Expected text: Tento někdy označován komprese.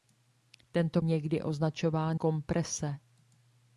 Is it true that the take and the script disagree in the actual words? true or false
false